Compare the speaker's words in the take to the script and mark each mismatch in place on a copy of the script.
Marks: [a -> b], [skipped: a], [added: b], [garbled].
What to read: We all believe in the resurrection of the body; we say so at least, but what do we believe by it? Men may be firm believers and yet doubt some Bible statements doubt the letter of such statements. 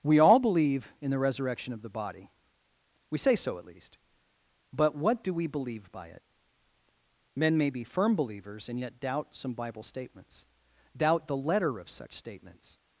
We all believe in the resurrection of the body; we say so at least, but what do we believe by it? Men may be firm believers and yet doubt some Bible statements doubt the letter of such statements.